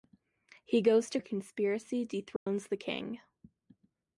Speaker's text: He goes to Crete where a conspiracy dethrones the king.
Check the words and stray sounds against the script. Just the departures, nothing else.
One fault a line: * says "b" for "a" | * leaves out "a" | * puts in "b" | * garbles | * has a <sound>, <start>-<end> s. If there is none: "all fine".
* leaves out "Crete where"
* has a dropout, 2.4-2.5 s